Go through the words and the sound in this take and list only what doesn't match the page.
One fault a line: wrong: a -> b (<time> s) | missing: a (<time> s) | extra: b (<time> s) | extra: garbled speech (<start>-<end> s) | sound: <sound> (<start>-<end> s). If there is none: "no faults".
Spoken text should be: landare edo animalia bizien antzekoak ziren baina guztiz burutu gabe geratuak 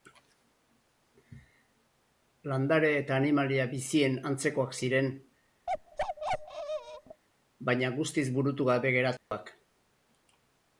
wrong: edo -> eta (3.0 s)
sound: bark (5.7-7.2 s)
sound: dropout (9.2-9.3 s)